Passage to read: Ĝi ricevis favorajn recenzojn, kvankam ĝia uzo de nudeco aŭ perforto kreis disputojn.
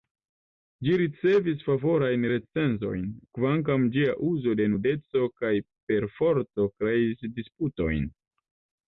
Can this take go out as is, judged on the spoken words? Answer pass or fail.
fail